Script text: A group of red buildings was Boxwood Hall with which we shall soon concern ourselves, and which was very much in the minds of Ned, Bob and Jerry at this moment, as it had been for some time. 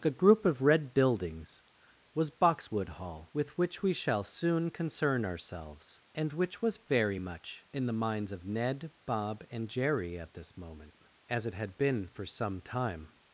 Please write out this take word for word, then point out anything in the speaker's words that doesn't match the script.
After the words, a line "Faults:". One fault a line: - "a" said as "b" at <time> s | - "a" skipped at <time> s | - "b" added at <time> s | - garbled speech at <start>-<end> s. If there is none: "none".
A group of red buildings was Boxwood Hall with which we shall soon concern ourselves, and which was very much in the minds of Ned, Bob and Jerry at this moment, as it had been for some time.
Faults:
none